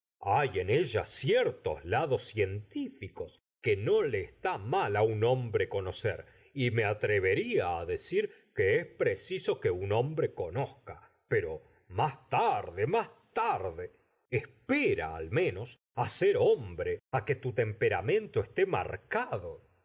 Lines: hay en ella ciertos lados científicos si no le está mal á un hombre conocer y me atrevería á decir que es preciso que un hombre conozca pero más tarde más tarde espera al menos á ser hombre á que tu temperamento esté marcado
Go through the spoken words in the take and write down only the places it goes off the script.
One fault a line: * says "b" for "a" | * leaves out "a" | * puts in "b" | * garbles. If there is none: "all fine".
* says "que" for "si"